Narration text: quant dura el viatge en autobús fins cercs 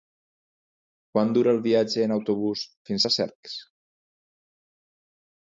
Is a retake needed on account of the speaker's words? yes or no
yes